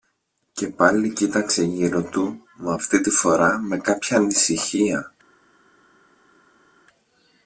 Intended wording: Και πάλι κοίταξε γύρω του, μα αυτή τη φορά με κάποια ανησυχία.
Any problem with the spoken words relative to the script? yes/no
no